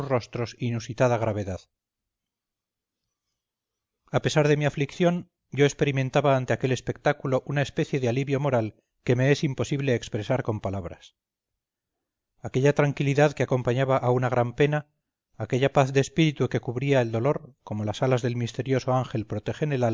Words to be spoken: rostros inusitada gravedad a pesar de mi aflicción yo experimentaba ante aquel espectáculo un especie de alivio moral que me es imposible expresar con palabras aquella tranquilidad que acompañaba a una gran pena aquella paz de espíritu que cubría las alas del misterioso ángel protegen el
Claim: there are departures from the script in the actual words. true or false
true